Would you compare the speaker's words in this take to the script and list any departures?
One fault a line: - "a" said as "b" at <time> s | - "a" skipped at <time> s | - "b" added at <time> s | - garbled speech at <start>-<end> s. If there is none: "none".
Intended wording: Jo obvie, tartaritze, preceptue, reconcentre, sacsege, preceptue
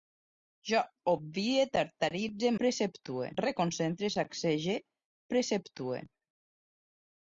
none